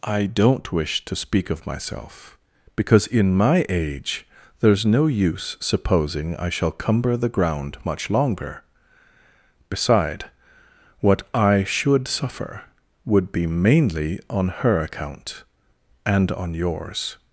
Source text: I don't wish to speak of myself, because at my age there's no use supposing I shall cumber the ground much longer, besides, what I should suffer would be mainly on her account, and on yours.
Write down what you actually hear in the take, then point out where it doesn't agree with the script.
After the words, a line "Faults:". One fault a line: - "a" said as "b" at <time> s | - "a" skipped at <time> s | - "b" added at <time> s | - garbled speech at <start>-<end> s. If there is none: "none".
I don't wish to speak of myself, because in my age there's no use supposing I shall cumber the ground much longer, beside, what I should suffer would be mainly on her account, and on yours.
Faults:
- "at" said as "in" at 3.1 s
- "besides" said as "beside" at 9.7 s